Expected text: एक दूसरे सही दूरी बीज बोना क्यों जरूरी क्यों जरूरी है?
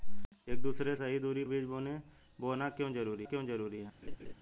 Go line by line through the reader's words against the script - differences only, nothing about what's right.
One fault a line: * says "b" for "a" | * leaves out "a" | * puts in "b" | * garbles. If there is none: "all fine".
all fine